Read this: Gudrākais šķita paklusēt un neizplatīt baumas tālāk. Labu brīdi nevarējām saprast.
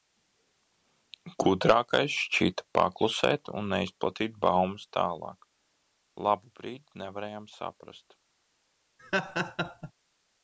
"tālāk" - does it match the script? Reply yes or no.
yes